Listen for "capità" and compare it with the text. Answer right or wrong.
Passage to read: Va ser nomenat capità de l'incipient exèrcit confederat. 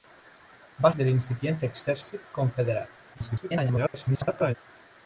wrong